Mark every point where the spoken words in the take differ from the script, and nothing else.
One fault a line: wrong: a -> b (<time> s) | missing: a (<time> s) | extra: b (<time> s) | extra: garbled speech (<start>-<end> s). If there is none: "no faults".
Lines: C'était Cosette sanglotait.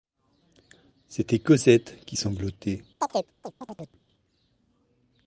extra: qui (2.0 s)